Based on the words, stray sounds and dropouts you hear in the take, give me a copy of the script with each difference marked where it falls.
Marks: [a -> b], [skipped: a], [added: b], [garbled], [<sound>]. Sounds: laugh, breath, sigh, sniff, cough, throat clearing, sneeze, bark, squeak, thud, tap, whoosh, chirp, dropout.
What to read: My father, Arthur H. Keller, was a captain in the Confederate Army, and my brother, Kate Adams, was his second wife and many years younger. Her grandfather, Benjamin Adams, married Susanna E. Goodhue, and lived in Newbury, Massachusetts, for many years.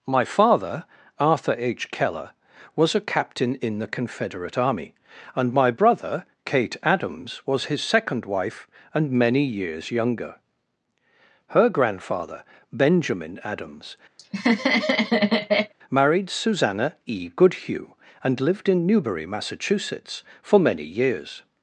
My father, Arthur H. Keller, was a captain in the Confederate Army, and my brother, Kate Adams, was his second wife and many years younger. Her grandfather, Benjamin Adams, [laugh] married Susanna E. Goodhue, and lived in Newbury, Massachusetts, for many years.